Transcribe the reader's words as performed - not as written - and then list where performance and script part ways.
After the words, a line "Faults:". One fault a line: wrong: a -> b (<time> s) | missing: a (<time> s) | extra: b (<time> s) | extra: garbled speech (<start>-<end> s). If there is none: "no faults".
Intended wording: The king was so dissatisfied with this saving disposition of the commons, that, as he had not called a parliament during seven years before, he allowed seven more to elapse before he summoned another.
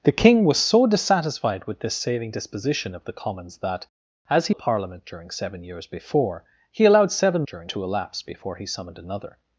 The king was so dissatisfied with this saving disposition of the commons, that, as he a parliament during seven years before, he allowed seven during to elapse before he summoned another.
Faults:
missing: had not called (4.5 s)
wrong: more -> during (7.5 s)